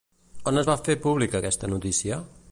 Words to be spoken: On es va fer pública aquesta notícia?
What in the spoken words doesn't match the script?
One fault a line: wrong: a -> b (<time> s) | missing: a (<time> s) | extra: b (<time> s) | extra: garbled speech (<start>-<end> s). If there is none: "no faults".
no faults